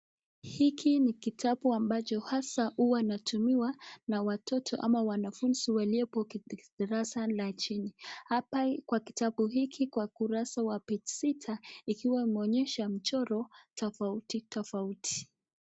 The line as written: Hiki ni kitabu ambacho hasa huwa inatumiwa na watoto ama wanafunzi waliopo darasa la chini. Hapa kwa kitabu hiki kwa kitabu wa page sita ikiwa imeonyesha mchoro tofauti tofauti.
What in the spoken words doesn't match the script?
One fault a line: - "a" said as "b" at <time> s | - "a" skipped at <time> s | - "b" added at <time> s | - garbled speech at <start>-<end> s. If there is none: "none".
- "kitabu" said as "kurasa" at 10.1 s